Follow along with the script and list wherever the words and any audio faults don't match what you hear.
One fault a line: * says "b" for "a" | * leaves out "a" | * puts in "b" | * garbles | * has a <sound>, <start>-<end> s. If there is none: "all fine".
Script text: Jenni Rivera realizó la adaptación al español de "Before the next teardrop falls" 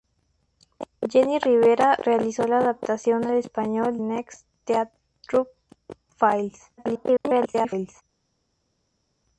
* leaves out "de Before the"
* garbles